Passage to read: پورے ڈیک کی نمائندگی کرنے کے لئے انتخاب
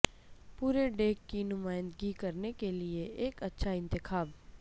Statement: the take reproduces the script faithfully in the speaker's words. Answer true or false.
false